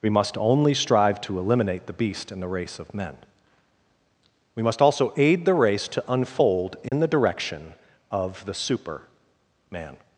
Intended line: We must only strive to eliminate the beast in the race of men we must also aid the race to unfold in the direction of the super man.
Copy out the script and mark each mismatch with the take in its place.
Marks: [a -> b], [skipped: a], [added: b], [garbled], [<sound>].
We must only strive to eliminate the beast in the race of men we must also aid the race to unfold in [dropout] the direction of the super man.